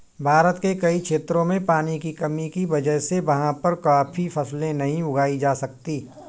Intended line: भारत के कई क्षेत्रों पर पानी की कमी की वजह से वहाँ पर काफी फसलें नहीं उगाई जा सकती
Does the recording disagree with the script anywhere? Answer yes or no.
yes